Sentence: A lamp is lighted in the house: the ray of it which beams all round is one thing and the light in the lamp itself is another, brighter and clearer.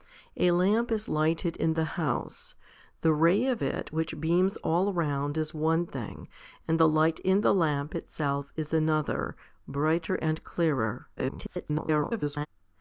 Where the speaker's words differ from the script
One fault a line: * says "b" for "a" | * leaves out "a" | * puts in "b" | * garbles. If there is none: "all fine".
* garbles